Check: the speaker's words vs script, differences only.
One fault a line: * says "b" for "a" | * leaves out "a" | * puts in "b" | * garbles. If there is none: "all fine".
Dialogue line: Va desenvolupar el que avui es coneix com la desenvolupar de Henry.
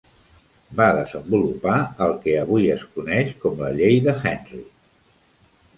* says "llei" for "desenvolupar"